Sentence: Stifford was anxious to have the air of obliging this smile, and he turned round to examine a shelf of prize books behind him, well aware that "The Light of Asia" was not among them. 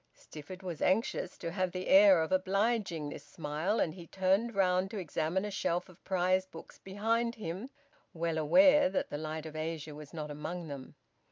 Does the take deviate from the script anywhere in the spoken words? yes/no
no